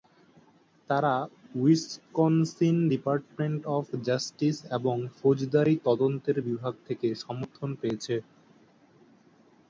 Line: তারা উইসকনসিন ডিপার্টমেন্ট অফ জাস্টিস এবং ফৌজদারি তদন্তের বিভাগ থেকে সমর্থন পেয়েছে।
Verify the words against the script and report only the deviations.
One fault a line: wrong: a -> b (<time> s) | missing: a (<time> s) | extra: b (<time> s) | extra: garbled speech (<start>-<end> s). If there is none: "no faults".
no faults